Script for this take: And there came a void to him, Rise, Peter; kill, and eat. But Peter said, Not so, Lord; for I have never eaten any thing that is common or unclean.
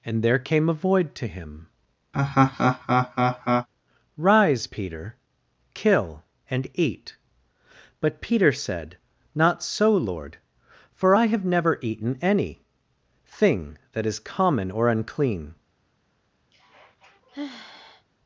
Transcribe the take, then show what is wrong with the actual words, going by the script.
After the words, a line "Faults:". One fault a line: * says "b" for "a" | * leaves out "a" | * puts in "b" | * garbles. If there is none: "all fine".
And there came a void to him, Rise, Peter; kill, and eat. But Peter said, Not so, Lord; for I have never eaten any thing that is common or unclean.
Faults:
all fine